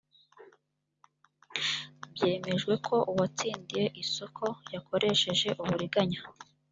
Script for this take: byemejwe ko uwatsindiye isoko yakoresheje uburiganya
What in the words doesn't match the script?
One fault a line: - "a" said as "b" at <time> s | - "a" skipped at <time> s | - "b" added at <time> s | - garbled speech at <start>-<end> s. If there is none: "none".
none